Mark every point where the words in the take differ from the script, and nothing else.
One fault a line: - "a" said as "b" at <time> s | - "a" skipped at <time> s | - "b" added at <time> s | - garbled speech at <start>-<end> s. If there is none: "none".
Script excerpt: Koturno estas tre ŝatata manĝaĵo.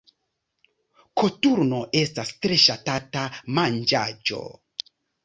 none